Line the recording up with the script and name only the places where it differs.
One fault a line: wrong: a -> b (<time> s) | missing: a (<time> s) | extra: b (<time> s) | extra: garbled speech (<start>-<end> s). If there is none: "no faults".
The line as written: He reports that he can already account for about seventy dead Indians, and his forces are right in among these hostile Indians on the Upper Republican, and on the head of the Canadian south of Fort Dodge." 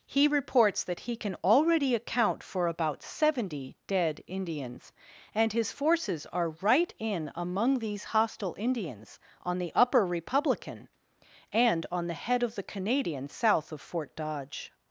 no faults